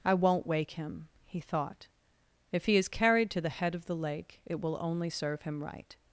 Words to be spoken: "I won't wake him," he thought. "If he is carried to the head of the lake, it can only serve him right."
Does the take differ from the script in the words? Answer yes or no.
yes